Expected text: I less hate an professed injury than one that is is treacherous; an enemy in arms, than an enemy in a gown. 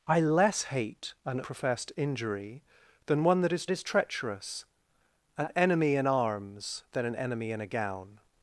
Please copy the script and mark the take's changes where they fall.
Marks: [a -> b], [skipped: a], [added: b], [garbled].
I less hate an professed injury than one that is is treacherous; an enemy in arms, than an enemy in a gown.